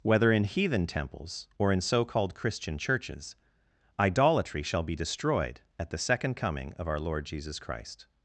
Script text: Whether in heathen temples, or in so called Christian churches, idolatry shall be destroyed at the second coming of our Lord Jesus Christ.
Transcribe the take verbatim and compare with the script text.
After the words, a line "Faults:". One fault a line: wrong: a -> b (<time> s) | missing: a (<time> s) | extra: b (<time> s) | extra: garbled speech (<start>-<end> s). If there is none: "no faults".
Whether in heathen temples, or in so called Christian churches, idolatry shall be destroyed at the second coming of our Lord Jesus Christ.
Faults:
no faults